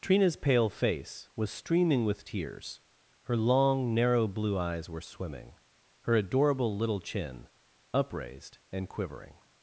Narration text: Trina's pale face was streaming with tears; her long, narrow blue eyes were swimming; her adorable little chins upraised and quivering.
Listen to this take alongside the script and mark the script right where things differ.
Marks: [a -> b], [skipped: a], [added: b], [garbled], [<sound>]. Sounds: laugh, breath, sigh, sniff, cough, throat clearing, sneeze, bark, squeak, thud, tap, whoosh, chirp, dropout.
Trina's pale face was streaming with tears; her long, narrow blue eyes were swimming; her adorable little [chins -> chin] upraised and quivering.